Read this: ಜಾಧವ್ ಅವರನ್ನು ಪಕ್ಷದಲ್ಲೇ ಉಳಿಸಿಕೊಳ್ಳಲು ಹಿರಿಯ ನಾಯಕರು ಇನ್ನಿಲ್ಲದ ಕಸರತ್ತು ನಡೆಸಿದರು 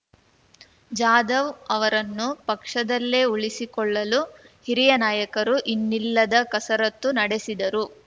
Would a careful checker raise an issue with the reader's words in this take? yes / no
no